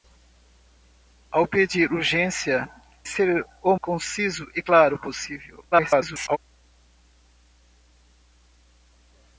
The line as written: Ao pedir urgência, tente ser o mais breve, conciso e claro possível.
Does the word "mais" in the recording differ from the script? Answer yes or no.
yes